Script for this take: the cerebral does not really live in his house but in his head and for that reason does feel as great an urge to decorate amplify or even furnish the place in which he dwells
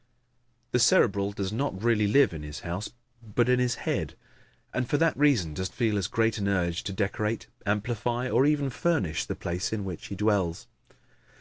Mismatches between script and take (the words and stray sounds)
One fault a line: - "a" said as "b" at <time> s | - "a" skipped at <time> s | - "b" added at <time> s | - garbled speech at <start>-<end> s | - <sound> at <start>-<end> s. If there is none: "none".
none